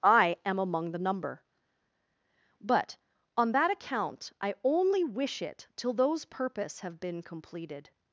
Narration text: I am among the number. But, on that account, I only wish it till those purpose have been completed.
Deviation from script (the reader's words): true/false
false